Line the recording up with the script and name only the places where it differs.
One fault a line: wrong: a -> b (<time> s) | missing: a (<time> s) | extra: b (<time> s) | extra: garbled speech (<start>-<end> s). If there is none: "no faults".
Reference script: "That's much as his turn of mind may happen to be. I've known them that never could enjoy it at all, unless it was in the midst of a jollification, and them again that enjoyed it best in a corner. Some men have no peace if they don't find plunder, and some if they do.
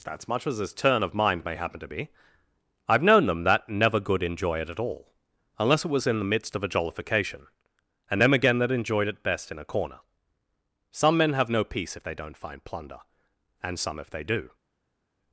wrong: could -> good (4.0 s)